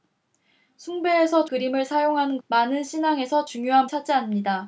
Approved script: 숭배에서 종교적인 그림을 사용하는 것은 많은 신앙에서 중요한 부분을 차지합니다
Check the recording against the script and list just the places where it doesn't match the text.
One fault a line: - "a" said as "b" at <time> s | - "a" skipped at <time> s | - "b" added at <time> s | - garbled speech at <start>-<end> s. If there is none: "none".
- "종교적인" skipped at 1.4 s
- "것은" skipped at 2.4 s
- "부분을" skipped at 3.9 s